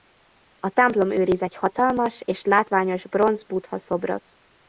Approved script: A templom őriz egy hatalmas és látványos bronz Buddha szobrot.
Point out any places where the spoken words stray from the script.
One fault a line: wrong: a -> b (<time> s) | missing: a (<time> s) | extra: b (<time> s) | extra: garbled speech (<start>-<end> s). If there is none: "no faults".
no faults